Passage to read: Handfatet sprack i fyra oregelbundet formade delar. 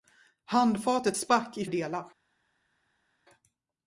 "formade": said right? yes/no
no